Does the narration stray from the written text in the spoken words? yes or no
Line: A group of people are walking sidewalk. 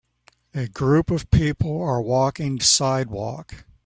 no